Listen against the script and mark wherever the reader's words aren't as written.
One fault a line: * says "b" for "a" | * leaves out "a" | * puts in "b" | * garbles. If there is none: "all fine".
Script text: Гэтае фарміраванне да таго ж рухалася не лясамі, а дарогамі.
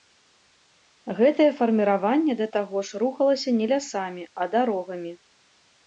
all fine